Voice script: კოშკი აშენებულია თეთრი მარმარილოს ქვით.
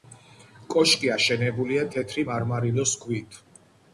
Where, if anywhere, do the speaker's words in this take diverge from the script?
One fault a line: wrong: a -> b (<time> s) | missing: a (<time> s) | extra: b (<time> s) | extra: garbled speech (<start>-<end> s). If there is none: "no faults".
no faults